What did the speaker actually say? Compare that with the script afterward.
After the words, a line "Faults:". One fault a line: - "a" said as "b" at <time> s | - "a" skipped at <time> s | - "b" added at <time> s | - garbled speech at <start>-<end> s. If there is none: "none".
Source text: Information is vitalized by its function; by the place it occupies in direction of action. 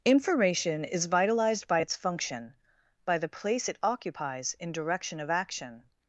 Information is vitalized by its function; by the place it occupies in direction of action.
Faults:
none